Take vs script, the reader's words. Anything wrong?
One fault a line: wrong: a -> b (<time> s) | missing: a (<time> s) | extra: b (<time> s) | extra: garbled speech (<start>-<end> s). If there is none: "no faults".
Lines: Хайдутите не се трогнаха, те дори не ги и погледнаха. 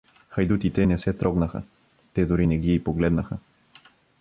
no faults